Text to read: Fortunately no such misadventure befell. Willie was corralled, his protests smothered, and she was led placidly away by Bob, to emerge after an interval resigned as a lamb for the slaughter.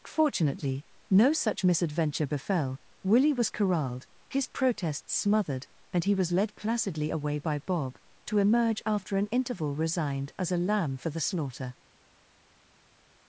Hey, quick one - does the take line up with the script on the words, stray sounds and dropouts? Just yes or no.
no